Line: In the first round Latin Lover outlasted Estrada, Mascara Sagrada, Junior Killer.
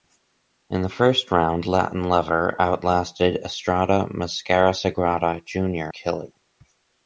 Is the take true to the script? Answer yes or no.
yes